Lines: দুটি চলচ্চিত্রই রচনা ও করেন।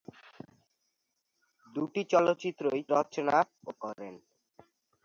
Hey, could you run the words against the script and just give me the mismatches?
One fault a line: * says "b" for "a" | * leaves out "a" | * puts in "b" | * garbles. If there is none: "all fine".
all fine